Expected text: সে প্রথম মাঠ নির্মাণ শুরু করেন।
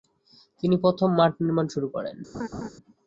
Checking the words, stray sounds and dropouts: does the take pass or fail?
fail